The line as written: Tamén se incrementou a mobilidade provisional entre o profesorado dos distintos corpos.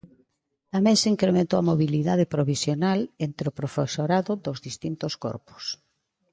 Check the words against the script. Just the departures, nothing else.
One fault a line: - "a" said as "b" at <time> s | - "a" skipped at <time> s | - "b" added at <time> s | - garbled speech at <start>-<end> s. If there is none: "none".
none